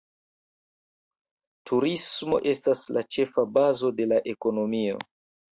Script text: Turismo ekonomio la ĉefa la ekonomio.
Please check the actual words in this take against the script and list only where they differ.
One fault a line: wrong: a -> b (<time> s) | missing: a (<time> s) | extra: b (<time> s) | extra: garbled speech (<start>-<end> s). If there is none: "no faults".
wrong: ekonomio -> estas (2.5 s)
extra: bazo de (3.6 s)